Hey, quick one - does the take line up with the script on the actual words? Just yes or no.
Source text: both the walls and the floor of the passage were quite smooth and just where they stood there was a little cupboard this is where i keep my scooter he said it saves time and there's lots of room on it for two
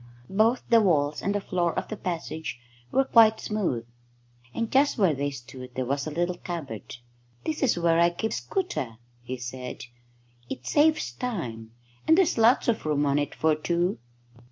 no